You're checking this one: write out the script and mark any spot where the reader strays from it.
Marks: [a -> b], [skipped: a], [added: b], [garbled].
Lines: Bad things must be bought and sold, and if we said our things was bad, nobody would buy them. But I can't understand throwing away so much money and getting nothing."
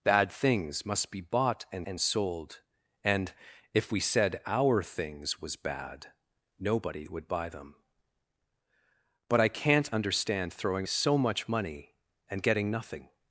Bad things must be bought and [added: and] sold, and if we said our things was bad, nobody would buy them. But I can't understand throwing [skipped: away] so much money and getting nothing."